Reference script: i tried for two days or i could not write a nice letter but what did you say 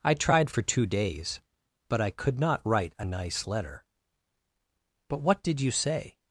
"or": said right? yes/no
no